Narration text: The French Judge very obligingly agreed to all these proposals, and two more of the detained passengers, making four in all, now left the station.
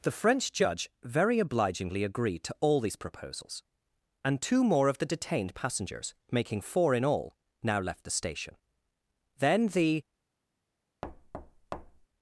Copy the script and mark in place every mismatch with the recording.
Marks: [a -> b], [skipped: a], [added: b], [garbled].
The French Judge very obligingly agreed to all these proposals, and two more of the detained passengers, making four in all, now left the station. [added: Then the]